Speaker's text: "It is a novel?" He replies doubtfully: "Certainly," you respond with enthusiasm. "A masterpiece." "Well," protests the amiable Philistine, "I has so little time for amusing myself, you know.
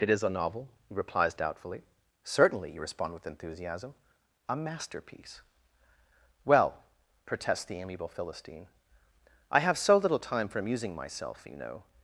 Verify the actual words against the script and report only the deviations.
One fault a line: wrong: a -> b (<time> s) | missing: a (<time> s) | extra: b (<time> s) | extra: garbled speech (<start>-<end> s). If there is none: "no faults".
wrong: has -> have (9.6 s)